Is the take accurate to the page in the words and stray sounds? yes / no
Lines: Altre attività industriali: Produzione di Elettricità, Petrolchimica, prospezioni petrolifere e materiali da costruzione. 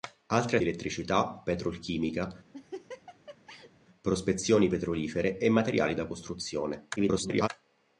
no